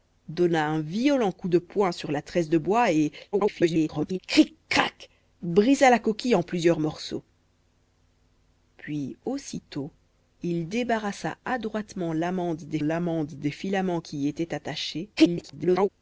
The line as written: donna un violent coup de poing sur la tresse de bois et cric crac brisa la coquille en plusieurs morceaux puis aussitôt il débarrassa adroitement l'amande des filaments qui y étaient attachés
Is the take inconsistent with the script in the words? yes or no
yes